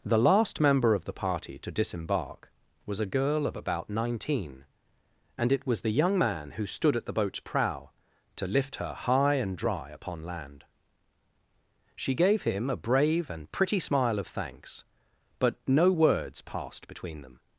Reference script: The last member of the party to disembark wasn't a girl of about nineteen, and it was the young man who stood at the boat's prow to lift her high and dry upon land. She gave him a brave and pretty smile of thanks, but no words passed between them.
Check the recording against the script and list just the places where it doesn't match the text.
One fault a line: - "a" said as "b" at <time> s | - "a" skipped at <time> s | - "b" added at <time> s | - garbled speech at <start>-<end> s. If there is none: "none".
- "wasn't" said as "was" at 2.9 s